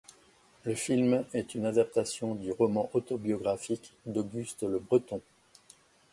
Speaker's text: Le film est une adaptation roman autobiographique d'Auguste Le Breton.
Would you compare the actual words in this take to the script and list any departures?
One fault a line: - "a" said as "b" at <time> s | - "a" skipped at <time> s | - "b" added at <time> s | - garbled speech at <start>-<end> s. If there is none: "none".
- "du" added at 2.3 s